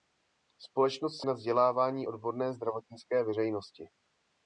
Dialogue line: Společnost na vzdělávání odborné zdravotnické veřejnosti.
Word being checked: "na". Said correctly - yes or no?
yes